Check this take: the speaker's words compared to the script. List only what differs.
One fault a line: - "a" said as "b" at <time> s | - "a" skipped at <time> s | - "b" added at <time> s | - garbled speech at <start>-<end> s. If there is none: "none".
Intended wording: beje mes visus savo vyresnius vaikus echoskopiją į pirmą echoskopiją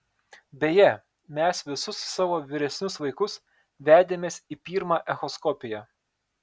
- "echoskopiją" said as "vedėmės" at 3.9 s